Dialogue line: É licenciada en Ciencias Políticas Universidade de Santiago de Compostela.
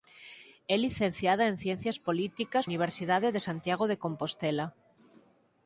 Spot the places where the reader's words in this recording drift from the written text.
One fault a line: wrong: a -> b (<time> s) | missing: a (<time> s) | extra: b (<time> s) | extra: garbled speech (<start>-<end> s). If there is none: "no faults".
no faults